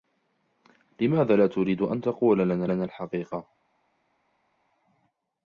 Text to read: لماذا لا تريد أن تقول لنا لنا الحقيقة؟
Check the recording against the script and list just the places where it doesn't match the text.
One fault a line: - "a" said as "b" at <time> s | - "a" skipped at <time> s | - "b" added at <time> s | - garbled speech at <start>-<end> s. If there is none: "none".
none